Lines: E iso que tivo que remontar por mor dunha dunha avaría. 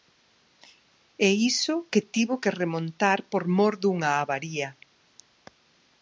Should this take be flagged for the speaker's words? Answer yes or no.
yes